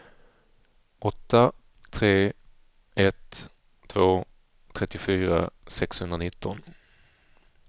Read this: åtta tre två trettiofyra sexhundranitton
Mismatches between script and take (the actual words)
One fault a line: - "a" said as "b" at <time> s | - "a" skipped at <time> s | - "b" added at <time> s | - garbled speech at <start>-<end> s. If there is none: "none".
- "ett" added at 2.9 s